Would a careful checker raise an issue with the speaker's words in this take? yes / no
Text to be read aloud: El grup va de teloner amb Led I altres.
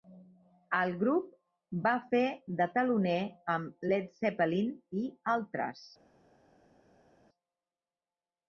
yes